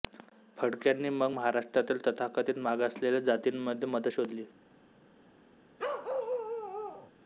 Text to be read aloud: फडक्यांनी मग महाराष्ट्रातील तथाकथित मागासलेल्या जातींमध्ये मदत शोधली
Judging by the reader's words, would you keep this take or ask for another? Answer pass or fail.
pass